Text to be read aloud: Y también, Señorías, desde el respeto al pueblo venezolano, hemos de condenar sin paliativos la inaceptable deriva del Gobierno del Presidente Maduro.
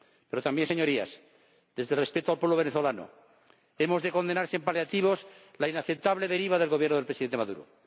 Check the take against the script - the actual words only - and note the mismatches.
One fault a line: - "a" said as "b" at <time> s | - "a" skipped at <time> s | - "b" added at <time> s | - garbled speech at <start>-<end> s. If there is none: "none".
- "Y" said as "Pero" at 0.3 s